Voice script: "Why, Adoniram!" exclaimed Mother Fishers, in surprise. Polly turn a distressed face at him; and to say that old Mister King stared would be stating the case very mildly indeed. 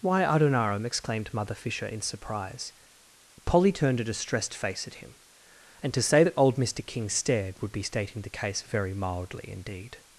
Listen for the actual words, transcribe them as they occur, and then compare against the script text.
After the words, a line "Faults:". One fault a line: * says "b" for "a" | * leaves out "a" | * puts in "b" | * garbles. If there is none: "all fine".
"Why, Adoniram!" exclaimed Mother Fisher, in surprise. Polly turned a distressed face at him; and to say that old Mister King stared would be stating the case very mildly indeed.
Faults:
* says "Fisher" for "Fishers"
* says "turned" for "turn"